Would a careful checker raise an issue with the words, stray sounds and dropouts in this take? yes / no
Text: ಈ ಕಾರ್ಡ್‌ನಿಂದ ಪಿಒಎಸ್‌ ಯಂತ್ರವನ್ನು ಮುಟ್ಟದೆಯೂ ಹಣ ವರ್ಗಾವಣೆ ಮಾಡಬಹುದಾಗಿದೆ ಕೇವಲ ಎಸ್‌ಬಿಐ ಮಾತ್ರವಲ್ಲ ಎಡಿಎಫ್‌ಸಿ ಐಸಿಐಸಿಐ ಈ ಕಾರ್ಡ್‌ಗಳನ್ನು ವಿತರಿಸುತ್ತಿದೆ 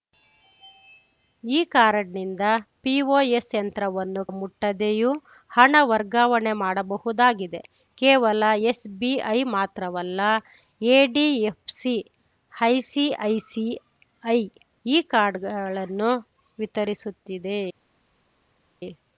no